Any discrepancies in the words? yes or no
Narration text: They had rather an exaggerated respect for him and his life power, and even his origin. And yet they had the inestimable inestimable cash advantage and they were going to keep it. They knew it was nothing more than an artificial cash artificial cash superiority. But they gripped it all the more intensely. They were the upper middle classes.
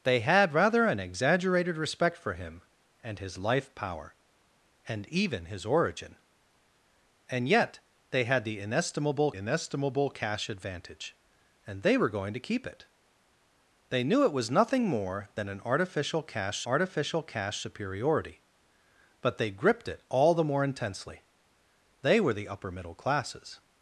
no